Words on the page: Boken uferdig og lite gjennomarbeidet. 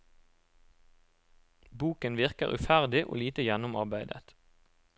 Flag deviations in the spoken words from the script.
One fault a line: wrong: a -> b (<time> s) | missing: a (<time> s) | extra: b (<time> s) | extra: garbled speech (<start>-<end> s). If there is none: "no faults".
extra: virker (2.2 s)